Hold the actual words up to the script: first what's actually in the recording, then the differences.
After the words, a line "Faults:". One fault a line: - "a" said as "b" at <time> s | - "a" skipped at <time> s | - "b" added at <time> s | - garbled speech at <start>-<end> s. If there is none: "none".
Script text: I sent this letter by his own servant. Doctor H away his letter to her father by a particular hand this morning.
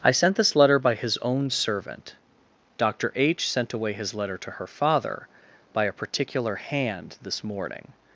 I sent this letter by his own servant. Doctor H sent away his letter to her father by a particular hand this morning.
Faults:
- "sent" added at 3.5 s